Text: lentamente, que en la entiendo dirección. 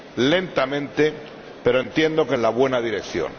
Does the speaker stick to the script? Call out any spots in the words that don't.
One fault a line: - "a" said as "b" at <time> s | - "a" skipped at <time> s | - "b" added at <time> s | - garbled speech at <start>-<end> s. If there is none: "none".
- "pero entiendo" added at 1.6 s
- "entiendo" said as "buena" at 2.5 s